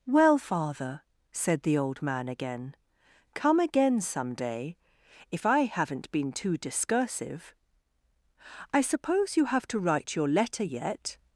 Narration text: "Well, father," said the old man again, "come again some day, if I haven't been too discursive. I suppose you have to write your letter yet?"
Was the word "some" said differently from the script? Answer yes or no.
no